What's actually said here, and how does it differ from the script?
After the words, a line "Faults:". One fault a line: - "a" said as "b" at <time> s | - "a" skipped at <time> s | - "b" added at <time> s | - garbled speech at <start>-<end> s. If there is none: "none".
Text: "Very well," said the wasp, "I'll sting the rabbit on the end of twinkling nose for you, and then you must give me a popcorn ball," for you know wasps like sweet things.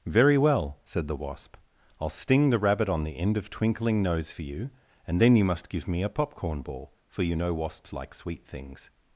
"Very well," said the wasp, "I'll sting the rabbit on the end of twinkling nose for you, and then you must give me a popcorn ball," for you know wasps like sweet things.
Faults:
none